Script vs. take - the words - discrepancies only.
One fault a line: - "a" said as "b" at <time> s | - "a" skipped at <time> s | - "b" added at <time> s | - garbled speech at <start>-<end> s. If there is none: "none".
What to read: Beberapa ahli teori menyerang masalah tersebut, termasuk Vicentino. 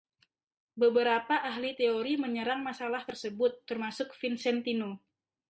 none